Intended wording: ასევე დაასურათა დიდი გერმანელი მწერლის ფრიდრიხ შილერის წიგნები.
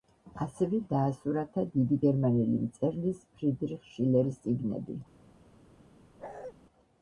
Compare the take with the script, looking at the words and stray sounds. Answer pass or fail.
fail